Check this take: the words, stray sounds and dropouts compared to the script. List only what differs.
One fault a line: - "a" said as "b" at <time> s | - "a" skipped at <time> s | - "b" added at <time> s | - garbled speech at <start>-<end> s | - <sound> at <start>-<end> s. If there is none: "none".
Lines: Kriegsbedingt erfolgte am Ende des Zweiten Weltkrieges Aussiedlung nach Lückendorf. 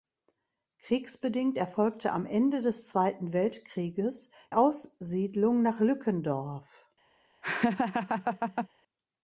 - laugh at 7.4-8.7 s